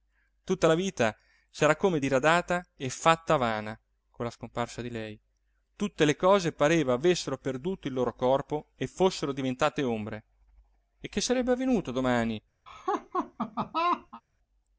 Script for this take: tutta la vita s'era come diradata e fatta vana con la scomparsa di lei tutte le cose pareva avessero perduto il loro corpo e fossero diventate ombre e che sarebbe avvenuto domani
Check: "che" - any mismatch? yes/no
no